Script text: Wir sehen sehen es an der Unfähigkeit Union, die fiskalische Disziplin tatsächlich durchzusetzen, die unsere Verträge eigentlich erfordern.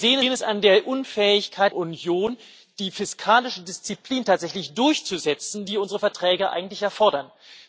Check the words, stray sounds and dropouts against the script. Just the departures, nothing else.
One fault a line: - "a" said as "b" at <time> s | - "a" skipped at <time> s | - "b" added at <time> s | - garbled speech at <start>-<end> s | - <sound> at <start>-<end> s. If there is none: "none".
none